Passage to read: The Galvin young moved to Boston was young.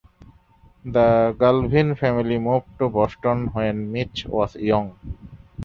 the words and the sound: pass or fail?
fail